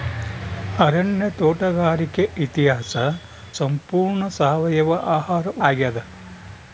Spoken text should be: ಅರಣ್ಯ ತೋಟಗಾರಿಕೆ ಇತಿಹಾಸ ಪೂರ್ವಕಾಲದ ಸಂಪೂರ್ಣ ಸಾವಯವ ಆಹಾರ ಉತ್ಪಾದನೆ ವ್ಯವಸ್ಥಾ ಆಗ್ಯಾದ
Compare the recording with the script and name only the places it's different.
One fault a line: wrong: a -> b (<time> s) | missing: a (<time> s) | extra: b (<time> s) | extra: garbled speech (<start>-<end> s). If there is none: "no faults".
missing: ಪೂರ್ವಕಾಲದ (2.9 s)
missing: ಉತ್ಪಾದನೆ ವ್ಯವಸ್ಥಾ (5.5 s)